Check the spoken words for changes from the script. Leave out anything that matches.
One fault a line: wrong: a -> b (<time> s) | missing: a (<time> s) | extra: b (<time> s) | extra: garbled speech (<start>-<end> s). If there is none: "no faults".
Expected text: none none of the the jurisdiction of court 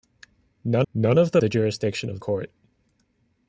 no faults